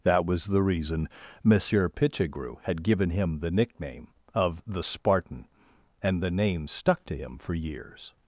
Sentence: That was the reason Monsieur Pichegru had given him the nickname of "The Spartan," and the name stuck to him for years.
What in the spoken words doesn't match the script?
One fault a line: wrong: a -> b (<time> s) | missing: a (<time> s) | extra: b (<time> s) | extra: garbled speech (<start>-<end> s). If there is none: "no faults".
no faults